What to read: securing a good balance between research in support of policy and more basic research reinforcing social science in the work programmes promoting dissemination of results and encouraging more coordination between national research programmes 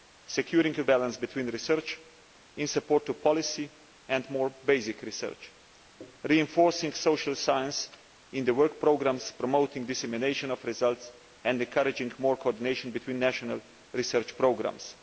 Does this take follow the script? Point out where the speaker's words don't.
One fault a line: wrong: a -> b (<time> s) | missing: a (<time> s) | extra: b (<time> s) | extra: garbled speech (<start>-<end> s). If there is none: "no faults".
missing: good (0.8 s)